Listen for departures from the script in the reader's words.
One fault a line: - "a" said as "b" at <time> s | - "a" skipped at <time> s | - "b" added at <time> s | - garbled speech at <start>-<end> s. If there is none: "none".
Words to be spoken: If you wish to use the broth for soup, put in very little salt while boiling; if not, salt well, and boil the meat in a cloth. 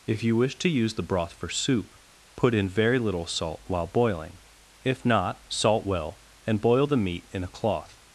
none